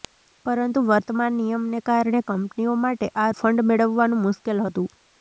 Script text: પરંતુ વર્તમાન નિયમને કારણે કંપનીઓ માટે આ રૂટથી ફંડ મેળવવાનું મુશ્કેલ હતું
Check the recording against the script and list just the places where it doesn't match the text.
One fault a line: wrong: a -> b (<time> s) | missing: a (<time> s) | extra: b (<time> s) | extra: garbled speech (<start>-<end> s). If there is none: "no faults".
missing: રૂટથી (3.3 s)